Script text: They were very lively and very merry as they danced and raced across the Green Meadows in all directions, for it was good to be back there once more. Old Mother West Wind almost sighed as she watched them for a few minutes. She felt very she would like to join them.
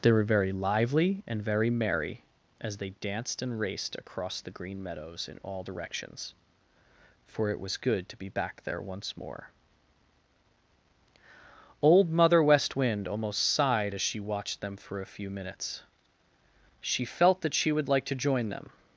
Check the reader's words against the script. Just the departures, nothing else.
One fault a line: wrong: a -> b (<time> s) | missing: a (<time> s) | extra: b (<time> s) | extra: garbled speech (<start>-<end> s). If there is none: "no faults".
wrong: very -> that (17.4 s)